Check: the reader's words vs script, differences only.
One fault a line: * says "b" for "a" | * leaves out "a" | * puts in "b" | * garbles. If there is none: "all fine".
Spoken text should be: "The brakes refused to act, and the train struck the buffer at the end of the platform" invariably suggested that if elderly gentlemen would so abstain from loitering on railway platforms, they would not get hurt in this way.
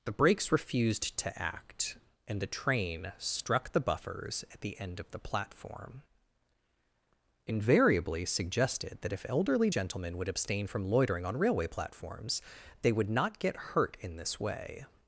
* says "buffers" for "buffer"
* leaves out "so"